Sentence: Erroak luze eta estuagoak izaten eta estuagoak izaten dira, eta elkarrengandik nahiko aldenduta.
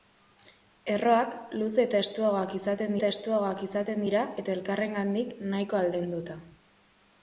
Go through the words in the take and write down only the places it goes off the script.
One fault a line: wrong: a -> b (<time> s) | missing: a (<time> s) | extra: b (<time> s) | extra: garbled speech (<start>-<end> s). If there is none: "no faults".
no faults